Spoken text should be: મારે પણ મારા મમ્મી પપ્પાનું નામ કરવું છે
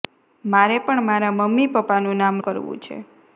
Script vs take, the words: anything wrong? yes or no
no